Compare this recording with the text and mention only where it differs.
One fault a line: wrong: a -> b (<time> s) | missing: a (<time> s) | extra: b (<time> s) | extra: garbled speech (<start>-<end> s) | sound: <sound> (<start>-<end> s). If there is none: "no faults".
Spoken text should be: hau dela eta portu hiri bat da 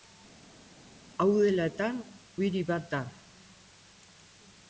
missing: portu (1.9 s)